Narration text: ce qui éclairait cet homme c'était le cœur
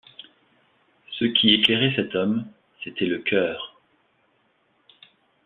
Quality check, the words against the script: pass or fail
pass